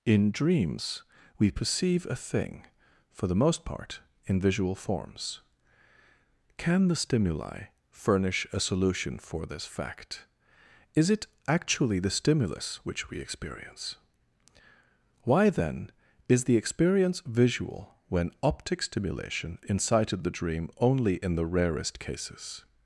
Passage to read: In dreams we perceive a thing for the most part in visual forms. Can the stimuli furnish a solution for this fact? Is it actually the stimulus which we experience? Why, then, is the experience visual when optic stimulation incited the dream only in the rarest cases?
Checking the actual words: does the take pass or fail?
pass